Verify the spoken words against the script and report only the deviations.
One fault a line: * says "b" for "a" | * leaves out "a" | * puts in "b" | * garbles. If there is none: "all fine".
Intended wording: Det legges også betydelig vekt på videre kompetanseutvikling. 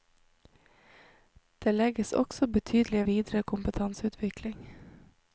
* leaves out "vekt på"